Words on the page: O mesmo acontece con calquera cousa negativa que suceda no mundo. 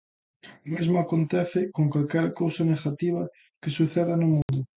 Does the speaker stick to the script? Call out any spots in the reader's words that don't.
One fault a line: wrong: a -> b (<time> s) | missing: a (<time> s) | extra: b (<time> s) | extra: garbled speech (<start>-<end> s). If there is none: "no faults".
no faults